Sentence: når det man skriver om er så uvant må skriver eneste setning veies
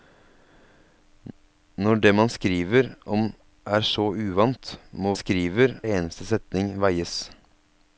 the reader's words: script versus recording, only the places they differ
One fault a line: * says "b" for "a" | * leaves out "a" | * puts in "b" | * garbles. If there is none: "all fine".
all fine